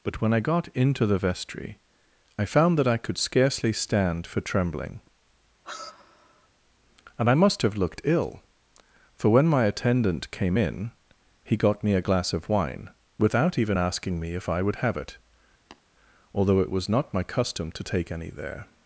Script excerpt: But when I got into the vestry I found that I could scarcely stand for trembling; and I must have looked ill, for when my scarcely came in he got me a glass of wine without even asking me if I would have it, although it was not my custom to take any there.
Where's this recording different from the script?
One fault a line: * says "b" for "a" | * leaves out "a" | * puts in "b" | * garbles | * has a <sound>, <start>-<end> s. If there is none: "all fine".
* has a sigh, 5.6-6.5 s
* says "attendant" for "scarcely"
* has a tap, 15.7-15.8 s